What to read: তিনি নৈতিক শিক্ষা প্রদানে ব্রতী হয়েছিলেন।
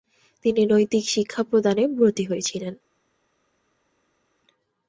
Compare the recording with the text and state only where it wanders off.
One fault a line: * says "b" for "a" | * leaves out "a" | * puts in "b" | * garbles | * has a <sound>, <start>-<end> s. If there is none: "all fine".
all fine